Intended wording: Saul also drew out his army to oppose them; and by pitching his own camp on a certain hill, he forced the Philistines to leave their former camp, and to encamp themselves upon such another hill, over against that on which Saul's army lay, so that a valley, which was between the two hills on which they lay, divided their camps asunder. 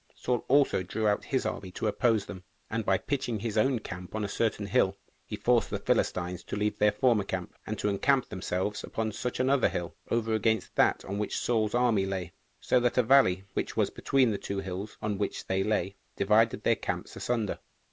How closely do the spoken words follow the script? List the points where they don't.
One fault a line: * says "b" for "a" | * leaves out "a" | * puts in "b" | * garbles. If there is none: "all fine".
all fine